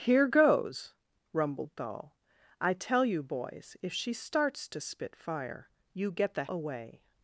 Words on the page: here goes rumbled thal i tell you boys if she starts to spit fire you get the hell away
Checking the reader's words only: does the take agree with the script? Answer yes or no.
no